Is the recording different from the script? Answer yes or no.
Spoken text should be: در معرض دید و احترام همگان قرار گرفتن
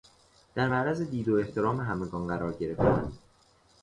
no